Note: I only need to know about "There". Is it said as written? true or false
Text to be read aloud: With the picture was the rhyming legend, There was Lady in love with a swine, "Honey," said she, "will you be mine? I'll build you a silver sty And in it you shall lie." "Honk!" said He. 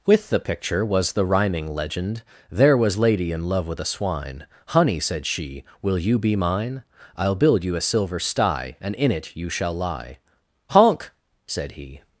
true